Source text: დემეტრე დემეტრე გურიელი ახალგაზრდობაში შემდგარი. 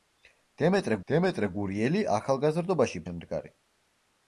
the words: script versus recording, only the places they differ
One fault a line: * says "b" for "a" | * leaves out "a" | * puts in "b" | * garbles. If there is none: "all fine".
all fine